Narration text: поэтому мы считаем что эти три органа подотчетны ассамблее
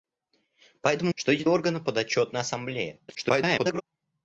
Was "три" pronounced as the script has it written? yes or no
no